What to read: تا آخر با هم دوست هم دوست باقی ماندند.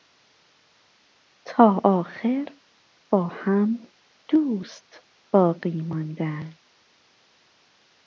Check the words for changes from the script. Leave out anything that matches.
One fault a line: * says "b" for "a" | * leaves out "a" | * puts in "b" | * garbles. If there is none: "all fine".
* leaves out "هم دوست"